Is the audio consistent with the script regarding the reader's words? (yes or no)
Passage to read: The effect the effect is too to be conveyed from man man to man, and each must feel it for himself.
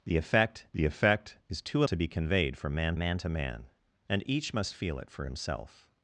yes